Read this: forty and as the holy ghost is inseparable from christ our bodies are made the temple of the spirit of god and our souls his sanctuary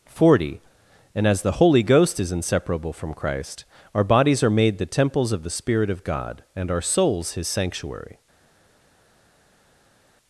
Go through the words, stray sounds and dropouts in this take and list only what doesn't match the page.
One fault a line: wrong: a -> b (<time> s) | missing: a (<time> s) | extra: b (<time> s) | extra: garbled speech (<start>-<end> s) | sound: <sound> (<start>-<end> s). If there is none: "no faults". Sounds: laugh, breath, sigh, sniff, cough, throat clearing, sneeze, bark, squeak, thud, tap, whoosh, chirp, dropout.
wrong: temple -> temples (4.8 s)